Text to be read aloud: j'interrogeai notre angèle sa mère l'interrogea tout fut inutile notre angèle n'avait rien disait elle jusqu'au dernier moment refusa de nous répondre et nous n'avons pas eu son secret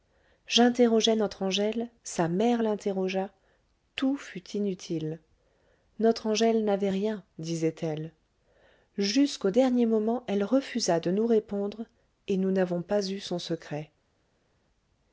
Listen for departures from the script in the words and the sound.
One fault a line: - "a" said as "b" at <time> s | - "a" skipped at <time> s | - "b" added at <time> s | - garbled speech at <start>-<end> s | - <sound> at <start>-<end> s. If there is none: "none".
- "elle" added at 10.3 s